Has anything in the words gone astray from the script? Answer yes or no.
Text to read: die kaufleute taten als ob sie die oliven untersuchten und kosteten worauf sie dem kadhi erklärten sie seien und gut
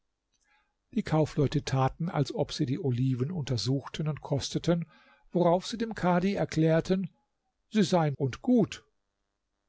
no